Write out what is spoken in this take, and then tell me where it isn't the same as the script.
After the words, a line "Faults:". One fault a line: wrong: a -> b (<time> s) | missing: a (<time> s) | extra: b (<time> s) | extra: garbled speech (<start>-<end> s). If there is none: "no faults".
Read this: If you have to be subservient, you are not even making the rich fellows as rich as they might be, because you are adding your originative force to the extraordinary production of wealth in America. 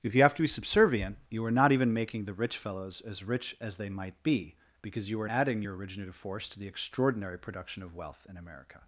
If you have to be subservient, you are not even making the rich fellows as rich as they might be, because you are adding your originative force to the extraordinary production of wealth in America.
Faults:
no faults